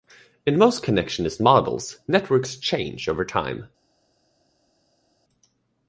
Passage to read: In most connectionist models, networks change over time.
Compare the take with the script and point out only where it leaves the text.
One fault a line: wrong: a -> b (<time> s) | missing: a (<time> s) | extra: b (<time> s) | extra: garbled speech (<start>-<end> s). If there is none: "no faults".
no faults